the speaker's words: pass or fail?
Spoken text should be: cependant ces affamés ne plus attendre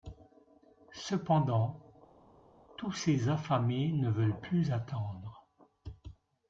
fail